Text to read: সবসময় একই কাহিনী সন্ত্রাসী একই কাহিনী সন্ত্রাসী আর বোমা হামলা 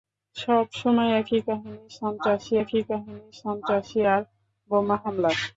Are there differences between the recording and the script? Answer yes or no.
no